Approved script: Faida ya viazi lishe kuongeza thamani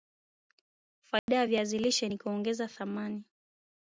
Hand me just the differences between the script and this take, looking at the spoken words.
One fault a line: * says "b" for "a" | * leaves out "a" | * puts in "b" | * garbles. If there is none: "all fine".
* puts in "ni"